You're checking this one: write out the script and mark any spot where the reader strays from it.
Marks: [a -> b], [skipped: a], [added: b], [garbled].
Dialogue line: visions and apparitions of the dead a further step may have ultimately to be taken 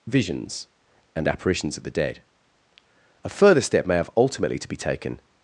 visions and apparitions of the dead a further step may have ultimately to be taken